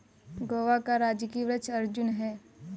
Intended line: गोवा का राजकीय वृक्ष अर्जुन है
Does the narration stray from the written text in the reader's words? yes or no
no